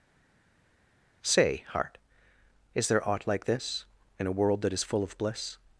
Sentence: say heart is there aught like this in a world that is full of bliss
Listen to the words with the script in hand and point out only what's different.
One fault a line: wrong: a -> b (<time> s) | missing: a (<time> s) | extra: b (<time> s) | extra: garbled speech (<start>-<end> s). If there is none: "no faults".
no faults